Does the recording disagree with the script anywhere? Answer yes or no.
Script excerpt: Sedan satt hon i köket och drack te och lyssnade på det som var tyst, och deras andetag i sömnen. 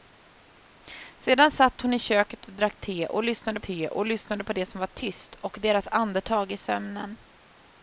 yes